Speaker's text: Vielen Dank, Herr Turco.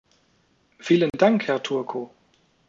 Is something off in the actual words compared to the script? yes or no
no